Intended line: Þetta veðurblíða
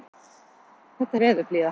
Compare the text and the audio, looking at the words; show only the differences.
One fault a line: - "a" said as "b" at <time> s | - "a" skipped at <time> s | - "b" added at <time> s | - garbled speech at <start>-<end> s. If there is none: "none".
none